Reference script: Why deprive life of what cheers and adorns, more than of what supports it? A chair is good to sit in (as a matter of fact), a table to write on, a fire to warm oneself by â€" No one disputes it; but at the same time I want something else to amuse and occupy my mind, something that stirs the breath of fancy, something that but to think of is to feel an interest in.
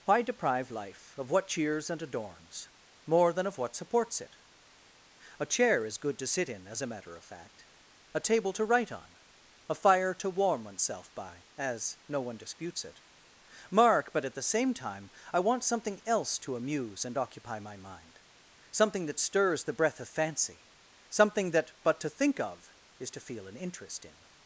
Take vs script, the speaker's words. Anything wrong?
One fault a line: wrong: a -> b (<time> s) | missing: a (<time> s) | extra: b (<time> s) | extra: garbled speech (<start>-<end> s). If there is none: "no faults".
wrong: â -> as (11.6 s)
extra: mark (13.7 s)